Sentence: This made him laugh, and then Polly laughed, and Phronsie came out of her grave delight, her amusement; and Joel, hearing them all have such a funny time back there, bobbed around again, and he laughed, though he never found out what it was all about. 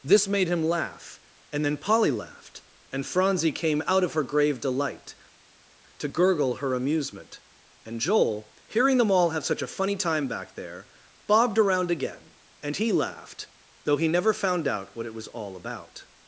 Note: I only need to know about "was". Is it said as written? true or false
true